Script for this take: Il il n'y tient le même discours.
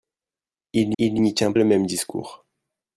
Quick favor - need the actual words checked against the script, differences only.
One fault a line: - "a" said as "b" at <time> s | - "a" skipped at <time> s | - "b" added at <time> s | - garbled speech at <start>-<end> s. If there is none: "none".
none